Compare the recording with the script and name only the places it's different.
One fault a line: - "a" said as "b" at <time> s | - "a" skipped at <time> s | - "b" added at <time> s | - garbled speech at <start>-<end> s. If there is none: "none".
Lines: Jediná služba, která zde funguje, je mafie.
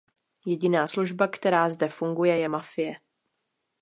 none